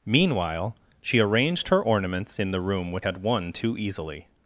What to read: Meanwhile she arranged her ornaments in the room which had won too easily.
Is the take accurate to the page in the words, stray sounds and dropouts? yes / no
yes